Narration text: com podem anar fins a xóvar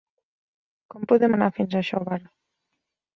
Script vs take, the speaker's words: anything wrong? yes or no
no